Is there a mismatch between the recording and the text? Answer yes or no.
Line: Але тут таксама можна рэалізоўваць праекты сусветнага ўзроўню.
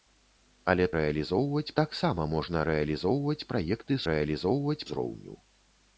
yes